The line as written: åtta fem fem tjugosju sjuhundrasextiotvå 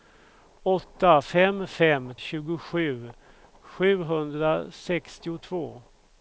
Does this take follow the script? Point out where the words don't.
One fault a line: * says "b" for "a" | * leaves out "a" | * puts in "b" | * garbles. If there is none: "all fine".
all fine